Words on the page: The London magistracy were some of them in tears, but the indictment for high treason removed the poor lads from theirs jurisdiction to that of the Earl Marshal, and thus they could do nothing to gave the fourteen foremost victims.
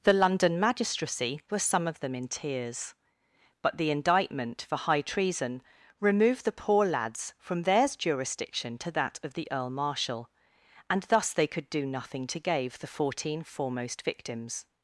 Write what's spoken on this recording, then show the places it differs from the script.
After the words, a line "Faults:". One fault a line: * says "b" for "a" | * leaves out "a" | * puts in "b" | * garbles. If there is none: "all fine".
The London magistracy were some of them in tears, but the indictment for high treason removed the poor lads from theirs jurisdiction to that of the Earl Marshal, and thus they could do nothing to gave the fourteen foremost victims.
Faults:
all fine